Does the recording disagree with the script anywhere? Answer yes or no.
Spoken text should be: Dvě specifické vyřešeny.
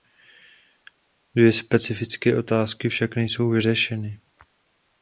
yes